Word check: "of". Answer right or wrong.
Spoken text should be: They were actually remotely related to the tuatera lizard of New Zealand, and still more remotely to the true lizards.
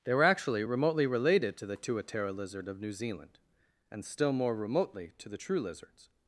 right